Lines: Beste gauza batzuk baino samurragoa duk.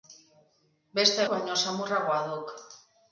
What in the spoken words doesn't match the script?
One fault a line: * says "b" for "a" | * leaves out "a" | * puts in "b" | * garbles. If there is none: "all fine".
* leaves out "gauza batzuk"